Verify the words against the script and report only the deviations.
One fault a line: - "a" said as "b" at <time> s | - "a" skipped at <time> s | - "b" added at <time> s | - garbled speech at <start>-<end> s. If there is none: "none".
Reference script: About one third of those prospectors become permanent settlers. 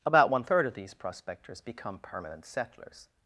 - "those" said as "these" at 0.7 s